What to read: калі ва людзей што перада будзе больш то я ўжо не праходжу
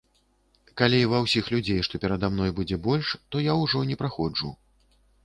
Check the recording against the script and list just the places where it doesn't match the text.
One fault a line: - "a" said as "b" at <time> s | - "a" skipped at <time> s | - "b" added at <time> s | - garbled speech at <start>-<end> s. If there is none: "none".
- "ўсіх" added at 1.2 s
- "мной" added at 2.4 s